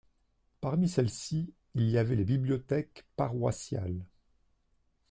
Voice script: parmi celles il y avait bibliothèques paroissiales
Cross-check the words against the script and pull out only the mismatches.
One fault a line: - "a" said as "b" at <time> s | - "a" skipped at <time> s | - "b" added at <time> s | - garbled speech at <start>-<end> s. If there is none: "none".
- "ci" added at 1.1 s
- "les" added at 2.1 s